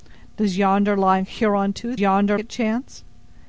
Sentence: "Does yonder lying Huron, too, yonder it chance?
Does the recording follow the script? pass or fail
pass